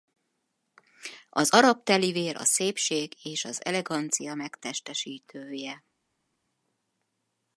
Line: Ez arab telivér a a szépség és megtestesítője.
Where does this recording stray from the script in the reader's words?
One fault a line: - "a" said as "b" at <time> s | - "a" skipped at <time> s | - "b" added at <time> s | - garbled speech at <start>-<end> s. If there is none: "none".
- "Ez" said as "Az" at 1.3 s
- "a" skipped at 2.4 s
- "az elegancia" added at 3.4 s